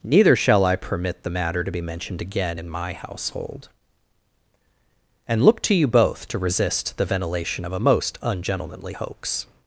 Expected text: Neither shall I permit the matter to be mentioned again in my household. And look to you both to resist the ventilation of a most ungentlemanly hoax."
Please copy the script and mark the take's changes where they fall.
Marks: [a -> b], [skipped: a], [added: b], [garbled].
Neither shall I permit the matter to be mentioned again in my household. And look to you both to resist the ventilation of a most ungentlemanly hoax."